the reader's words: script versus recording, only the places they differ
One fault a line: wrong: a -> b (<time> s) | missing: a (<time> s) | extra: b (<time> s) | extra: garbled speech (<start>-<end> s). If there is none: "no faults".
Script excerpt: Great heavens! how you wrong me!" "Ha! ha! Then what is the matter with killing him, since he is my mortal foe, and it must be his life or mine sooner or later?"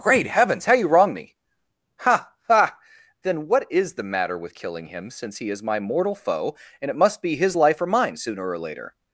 no faults